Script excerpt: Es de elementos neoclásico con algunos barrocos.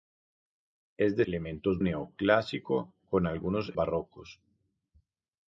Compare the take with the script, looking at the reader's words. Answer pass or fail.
pass